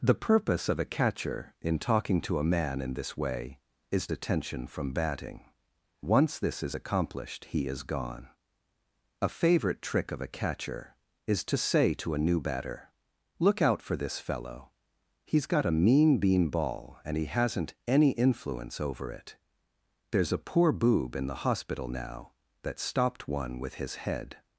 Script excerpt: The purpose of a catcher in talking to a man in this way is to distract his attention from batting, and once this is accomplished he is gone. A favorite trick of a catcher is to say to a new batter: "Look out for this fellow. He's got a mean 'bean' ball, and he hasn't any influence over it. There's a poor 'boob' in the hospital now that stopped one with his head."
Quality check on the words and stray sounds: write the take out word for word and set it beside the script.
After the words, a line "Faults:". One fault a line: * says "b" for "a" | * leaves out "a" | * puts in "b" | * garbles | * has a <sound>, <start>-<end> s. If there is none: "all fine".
The purpose of a catcher in talking to a man in this way is attention from batting, once this is accomplished he is gone. A favorite trick of a catcher is to say to a new batter: "Look out for this fellow. He's got a mean 'bean' ball, and he hasn't any influence over it. There's a poor 'boob' in the hospital now that stopped one with his head."
Faults:
* leaves out "to distract his"
* leaves out "and"